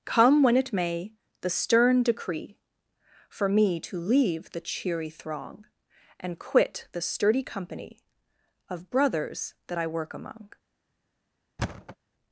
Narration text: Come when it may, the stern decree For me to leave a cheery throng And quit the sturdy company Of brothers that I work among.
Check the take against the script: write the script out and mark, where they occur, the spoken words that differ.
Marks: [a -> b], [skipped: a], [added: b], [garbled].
Come when it may, the stern decree For me to leave [a -> the] cheery throng And quit the sturdy company Of brothers that I work among.